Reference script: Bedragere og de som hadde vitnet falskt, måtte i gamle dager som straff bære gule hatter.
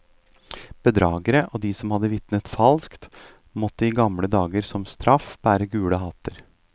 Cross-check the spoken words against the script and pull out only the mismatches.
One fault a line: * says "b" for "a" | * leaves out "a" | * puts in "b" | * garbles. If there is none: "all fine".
all fine